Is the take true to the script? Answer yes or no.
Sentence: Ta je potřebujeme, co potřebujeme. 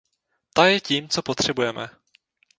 no